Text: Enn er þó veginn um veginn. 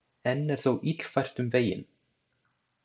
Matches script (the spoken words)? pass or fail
fail